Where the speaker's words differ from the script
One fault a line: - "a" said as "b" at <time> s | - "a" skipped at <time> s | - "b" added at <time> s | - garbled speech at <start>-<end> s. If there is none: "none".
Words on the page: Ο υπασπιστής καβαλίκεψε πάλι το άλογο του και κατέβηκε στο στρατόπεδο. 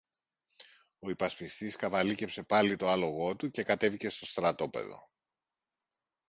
none